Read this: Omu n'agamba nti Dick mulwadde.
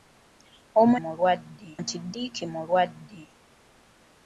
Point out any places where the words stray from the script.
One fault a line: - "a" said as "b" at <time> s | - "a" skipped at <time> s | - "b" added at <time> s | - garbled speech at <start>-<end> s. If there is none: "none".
- "n'agamba" said as "mulwadde" at 1.0 s